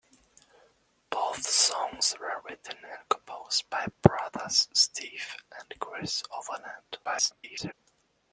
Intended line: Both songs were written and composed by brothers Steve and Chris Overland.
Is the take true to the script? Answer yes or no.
no